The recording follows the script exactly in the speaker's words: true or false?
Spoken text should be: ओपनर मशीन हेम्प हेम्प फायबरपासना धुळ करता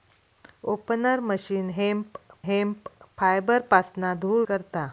true